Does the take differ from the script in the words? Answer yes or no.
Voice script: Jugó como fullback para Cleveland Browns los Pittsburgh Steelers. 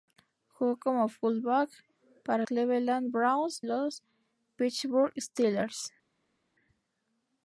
no